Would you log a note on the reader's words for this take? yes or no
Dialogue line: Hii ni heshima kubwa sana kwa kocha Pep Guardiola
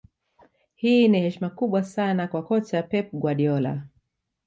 no